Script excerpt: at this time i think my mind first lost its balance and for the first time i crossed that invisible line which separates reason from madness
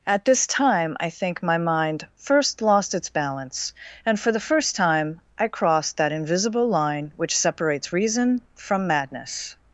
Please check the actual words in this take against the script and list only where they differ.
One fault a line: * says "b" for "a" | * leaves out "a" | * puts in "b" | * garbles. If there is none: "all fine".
all fine